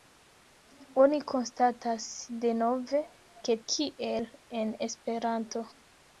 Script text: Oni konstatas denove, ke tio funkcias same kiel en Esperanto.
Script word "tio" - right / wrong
wrong